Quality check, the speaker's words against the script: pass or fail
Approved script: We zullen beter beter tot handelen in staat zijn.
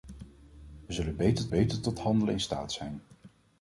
pass